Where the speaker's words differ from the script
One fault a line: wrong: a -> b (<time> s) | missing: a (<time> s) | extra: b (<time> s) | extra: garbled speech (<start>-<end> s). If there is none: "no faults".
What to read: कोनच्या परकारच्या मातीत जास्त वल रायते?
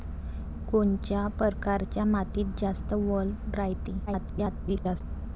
extra: garbled speech (4.1-5.0 s)